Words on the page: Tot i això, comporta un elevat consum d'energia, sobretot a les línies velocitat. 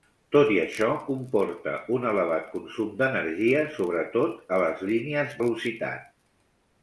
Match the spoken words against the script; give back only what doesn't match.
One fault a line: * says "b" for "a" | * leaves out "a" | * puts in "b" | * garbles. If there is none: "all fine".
all fine